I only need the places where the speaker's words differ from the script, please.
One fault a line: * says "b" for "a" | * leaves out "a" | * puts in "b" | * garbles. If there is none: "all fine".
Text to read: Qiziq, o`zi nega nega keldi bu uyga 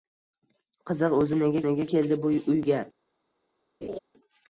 all fine